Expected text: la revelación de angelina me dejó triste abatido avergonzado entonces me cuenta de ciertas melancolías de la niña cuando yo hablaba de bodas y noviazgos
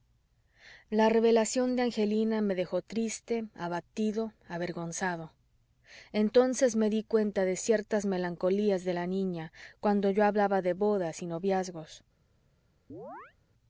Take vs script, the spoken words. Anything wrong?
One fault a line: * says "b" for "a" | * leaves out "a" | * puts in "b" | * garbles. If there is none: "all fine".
* puts in "dí"